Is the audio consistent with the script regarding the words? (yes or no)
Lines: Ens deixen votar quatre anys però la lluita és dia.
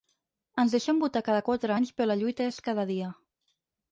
no